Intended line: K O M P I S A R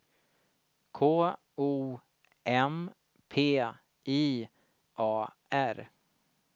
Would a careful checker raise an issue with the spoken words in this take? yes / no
yes